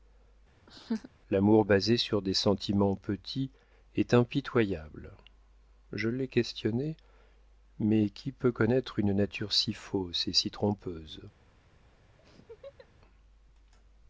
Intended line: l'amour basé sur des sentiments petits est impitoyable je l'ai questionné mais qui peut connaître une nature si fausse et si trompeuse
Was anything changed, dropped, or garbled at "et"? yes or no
no